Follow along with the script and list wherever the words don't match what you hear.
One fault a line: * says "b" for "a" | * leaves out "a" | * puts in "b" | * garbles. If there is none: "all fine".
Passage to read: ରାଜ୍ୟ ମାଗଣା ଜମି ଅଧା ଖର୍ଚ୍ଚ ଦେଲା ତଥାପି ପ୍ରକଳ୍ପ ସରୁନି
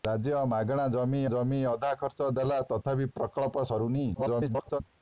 * puts in "ଜମି"
* garbles